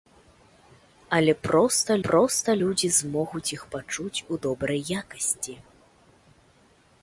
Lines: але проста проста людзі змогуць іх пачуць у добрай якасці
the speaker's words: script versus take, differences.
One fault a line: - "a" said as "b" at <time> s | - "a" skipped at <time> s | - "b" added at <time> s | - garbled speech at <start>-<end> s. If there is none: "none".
none